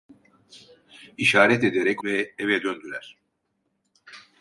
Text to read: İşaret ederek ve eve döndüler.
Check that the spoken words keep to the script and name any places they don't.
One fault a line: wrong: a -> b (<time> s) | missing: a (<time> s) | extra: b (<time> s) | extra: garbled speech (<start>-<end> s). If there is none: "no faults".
no faults